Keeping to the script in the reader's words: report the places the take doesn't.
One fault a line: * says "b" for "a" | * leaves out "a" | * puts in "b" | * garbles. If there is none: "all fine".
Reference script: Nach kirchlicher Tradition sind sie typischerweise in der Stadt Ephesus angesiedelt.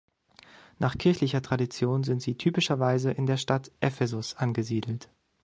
all fine